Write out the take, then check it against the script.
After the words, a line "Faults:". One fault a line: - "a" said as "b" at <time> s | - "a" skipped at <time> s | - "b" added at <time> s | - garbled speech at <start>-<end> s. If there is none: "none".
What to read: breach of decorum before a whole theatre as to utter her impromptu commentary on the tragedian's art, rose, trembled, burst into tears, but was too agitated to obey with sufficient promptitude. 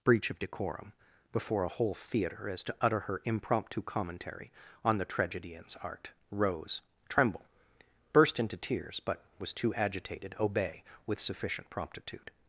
breach of decorum before a whole theatre as to utter her impromptu commentary on the tragedian's art, rose, tremble, burst into tears, but was too agitated obey with sufficient promptitude.
Faults:
- "trembled" said as "tremble" at 7.1 s
- "to" skipped at 10.3 s